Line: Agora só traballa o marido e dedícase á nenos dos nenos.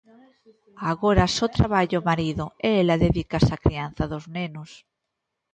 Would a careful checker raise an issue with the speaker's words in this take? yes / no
yes